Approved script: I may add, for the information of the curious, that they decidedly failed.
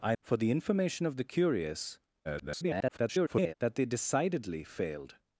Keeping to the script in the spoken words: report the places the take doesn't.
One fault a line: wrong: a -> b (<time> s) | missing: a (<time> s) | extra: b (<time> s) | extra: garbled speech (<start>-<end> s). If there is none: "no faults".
missing: may add (0.1 s)
extra: garbled speech (2.2-3.5 s)